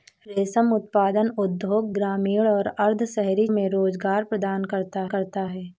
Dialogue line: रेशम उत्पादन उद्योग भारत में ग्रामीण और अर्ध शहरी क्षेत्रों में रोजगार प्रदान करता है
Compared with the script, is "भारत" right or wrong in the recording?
wrong